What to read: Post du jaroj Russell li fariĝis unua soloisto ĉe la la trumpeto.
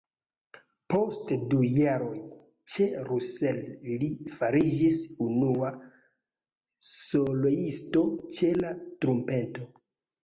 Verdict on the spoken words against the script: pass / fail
fail